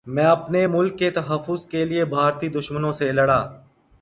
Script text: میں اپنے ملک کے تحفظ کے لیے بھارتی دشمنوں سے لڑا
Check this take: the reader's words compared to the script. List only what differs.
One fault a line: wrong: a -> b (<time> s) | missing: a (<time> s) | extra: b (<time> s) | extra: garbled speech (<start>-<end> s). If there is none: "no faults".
no faults